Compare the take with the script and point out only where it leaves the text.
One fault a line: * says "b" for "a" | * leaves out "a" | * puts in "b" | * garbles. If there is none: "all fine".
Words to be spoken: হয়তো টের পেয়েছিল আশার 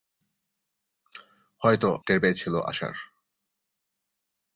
all fine